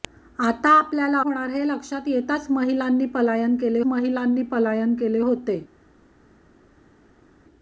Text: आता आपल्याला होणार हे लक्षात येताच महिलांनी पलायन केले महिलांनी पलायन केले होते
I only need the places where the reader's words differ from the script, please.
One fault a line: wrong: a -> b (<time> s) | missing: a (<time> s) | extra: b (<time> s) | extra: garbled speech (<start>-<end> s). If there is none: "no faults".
no faults